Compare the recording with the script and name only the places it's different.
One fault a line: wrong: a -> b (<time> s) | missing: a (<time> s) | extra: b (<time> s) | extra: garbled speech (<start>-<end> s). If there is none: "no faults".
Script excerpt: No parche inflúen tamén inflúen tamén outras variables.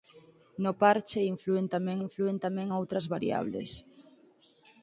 no faults